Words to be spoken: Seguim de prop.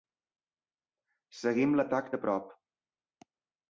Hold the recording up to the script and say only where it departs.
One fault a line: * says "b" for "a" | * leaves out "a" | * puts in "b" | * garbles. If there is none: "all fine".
* puts in "l'atac"